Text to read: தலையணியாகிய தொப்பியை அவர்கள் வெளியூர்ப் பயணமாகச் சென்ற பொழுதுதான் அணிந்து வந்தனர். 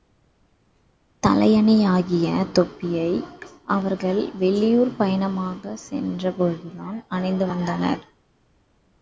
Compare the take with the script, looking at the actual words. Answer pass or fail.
pass